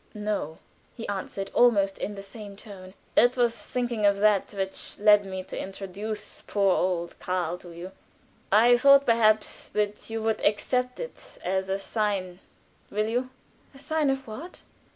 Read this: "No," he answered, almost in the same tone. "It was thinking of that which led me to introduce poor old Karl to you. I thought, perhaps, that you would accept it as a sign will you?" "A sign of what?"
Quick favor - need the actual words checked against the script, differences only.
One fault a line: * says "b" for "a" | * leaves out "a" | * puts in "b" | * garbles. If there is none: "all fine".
all fine